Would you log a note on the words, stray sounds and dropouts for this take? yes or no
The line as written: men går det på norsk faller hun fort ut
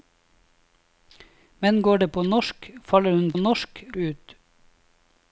yes